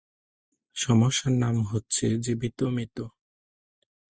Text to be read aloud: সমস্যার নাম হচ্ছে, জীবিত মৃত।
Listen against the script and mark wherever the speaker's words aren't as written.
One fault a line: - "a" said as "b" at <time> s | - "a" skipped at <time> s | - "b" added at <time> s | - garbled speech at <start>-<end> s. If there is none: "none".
none